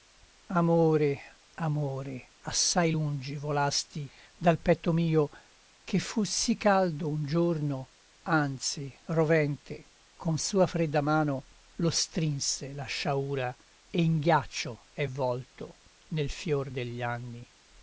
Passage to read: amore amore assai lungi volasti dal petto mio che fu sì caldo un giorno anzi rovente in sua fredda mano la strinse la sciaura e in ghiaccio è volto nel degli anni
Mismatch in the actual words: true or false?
true